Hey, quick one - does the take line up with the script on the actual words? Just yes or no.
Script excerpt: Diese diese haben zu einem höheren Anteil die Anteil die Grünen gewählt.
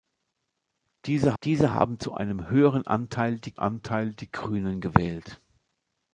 yes